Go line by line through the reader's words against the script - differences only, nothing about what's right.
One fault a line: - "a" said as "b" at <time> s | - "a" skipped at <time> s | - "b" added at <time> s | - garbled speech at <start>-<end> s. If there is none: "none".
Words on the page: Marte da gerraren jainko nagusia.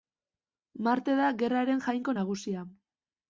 none